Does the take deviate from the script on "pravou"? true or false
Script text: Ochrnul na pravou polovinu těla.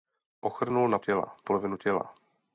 true